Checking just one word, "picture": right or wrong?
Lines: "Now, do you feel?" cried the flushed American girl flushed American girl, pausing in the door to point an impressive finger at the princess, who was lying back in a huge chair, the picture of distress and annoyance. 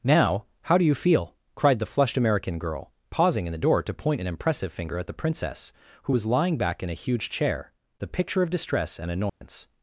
right